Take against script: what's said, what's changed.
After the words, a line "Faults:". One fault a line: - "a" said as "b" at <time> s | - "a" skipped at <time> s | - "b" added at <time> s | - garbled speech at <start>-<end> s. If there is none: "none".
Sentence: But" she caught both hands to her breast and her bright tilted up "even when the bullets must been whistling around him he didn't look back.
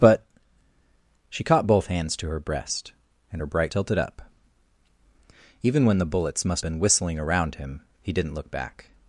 But" she caught both hands to her breast and her bright tilted up "even when the bullets must been whistling around him he didn't look back.
Faults:
none